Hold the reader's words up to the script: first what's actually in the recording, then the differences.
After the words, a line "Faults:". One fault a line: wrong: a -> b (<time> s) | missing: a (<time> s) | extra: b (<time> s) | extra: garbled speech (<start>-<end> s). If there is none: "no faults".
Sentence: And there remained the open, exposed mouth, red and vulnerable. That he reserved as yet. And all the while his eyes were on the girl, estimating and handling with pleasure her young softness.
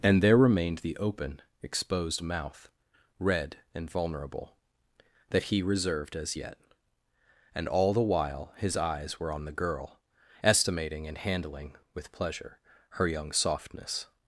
And there remained the open, exposed mouth, red and vulnerable. That he reserved as yet. And all the while his eyes were on the girl, estimating and handling with pleasure her young softness.
Faults:
no faults